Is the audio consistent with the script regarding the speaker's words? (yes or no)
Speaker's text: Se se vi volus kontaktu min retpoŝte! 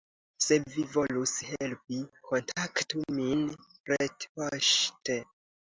no